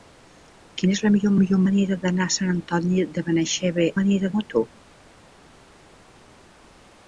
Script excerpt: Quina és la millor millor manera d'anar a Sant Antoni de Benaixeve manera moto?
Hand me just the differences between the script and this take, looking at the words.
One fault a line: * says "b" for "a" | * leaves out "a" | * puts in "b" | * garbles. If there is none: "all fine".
all fine